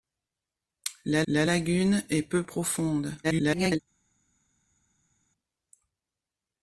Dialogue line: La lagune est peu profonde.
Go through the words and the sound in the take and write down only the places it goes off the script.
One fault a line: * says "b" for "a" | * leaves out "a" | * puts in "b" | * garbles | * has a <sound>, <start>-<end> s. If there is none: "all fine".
* puts in "la"
* garbles